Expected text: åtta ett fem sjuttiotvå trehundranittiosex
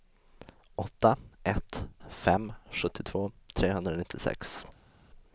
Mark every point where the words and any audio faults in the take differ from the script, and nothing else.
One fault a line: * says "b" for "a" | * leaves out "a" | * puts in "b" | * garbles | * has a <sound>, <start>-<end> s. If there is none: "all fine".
all fine